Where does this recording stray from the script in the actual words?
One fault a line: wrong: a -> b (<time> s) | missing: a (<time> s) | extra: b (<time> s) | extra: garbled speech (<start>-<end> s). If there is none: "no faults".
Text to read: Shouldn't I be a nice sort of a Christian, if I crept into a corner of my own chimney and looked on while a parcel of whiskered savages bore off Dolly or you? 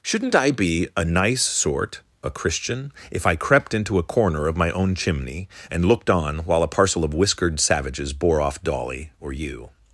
missing: of (2.0 s)